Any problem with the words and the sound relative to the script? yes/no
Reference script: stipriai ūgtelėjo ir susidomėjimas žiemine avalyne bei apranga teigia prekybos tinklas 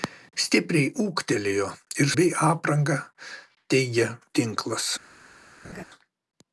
yes